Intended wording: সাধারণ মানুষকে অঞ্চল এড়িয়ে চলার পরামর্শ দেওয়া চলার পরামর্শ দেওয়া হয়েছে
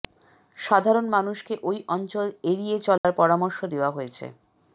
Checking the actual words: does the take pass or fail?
fail